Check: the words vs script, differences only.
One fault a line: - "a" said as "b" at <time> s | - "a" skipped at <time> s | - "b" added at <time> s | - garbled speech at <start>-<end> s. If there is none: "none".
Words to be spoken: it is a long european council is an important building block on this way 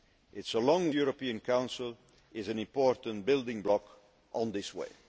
none